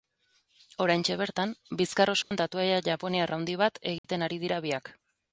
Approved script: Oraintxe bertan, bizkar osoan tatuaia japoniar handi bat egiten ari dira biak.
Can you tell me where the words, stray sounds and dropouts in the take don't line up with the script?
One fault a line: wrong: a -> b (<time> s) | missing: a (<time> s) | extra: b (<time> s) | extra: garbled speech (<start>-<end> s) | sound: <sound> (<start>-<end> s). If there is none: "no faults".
sound: dropout (2.2-2.3 s)
sound: dropout (4.0-4.0 s)